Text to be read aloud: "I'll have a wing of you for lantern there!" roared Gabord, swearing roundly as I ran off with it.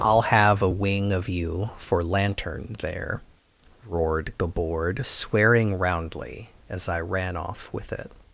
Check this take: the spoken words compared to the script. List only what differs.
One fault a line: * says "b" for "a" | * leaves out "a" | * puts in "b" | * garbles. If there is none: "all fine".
all fine